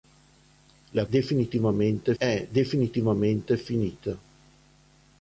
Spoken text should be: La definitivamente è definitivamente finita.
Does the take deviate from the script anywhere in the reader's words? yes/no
no